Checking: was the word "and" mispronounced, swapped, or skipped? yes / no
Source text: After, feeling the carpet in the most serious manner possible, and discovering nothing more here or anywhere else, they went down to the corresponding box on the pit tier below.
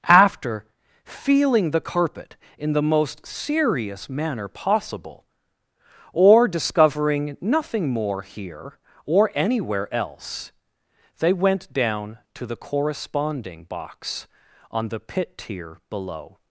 yes